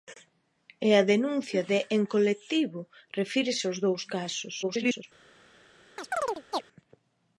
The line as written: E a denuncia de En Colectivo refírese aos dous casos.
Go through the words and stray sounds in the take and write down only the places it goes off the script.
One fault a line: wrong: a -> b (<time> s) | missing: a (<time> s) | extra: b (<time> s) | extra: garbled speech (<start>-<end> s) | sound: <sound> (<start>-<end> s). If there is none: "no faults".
extra: garbled speech (4.6-5.0 s)
sound: chirp (6.0-6.6 s)